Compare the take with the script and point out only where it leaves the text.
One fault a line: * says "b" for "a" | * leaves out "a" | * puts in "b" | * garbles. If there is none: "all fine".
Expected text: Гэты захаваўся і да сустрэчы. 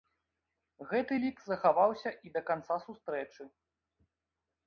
* puts in "лік"
* puts in "канца"